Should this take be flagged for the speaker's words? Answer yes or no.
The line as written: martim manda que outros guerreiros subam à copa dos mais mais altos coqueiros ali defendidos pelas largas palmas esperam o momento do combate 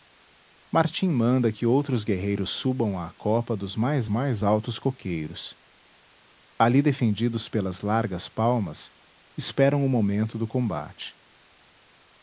no